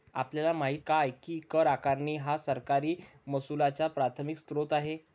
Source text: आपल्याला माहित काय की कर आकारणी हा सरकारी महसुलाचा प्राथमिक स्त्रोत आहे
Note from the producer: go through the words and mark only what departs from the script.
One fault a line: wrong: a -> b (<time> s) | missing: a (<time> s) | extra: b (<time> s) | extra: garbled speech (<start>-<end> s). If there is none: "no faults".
no faults